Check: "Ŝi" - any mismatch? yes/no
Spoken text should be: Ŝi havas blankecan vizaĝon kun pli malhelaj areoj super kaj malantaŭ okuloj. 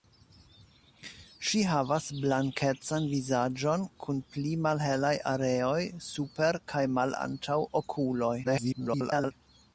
no